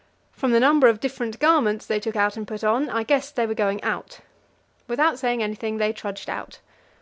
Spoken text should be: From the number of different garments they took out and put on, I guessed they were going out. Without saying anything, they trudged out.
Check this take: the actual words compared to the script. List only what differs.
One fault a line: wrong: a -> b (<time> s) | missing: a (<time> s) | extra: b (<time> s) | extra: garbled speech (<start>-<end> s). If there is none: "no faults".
no faults